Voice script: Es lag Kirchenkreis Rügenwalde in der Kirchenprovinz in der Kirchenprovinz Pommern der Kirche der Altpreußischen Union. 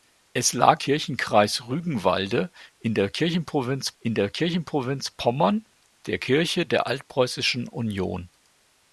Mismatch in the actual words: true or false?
false